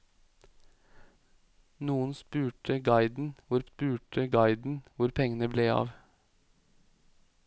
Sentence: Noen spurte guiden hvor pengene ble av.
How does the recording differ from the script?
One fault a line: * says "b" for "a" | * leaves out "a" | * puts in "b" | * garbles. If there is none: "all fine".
* puts in "spurte guiden hvor"